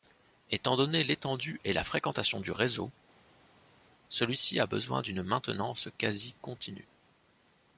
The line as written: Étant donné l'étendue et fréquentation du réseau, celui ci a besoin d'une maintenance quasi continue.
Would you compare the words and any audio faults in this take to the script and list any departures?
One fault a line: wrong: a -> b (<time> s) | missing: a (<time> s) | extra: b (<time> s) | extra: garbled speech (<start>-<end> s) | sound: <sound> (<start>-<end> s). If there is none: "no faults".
extra: la (1.7 s)